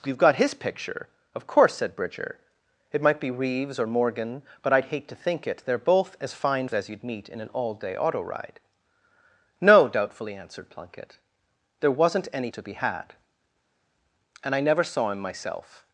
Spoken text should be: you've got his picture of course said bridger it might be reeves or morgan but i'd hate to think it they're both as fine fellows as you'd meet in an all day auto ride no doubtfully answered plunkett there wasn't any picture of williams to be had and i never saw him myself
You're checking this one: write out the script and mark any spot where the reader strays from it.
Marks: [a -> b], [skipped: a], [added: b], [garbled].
you've got his picture of course said bridger it might be reeves or morgan but i'd hate to think it they're both as fine [skipped: fellows] as you'd meet in an all day auto ride no doubtfully answered plunkett there wasn't any [skipped: picture of williams] to be had and i never saw him myself